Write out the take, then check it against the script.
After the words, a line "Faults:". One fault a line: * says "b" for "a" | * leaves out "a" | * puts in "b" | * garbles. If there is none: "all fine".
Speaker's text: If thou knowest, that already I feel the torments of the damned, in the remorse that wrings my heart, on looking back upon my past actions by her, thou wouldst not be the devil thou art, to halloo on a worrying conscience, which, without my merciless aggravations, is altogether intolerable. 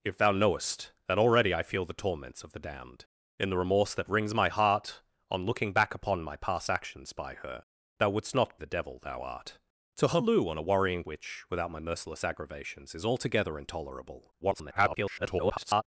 If thou knowest, that already I feel the torments of the damned, in the remorse that wrings my heart, on looking back upon my past actions by her, thou wouldst not the devil thou art, to halloo on a worrying which, without my merciless aggravations, is altogether intolerable. [garbled]
Faults:
* leaves out "be"
* leaves out "conscience"
* garbles